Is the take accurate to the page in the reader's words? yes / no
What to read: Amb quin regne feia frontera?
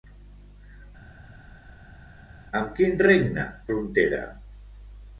no